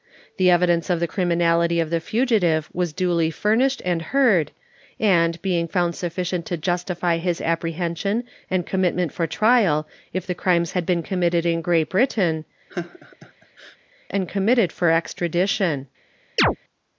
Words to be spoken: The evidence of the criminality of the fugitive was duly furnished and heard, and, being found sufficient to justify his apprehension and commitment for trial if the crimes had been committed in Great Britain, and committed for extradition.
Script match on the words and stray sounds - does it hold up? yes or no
no